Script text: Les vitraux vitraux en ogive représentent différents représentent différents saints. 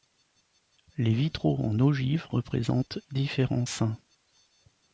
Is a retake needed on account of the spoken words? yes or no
yes